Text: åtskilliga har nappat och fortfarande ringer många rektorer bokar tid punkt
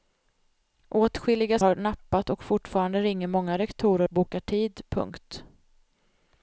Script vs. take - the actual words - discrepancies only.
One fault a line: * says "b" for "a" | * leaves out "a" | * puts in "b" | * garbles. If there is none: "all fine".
all fine